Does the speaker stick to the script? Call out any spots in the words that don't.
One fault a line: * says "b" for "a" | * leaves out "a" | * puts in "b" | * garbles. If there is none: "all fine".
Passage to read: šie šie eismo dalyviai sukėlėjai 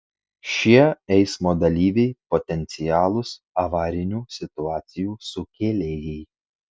* leaves out "šie"
* puts in "potencialūs avarinių situacijų"